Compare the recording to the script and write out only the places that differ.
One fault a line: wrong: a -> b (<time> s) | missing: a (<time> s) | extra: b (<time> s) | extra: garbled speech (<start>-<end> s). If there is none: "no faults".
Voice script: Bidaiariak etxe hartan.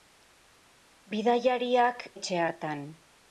no faults